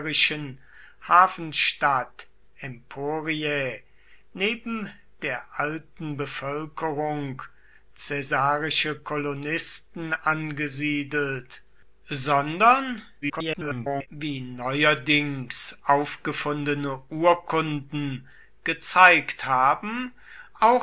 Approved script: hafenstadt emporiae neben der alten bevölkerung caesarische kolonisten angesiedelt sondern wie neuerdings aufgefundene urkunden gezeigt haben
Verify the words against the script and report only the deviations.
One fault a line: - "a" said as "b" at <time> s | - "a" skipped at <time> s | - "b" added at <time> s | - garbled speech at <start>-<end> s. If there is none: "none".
- garbled speech at 13.2-14.1 s